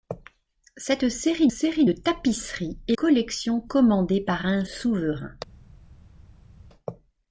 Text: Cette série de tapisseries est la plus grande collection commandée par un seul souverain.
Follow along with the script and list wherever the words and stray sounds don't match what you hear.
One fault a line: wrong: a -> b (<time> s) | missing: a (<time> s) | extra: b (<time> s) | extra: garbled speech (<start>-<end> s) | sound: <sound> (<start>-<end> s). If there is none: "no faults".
extra: série (1.5 s)
missing: la plus grande (3.0 s)
missing: seul (4.6 s)